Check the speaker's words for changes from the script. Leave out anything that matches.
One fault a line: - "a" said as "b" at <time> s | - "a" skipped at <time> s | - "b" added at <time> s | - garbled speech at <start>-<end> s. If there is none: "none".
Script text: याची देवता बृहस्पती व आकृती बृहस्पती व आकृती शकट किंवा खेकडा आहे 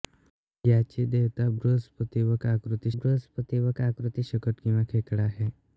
none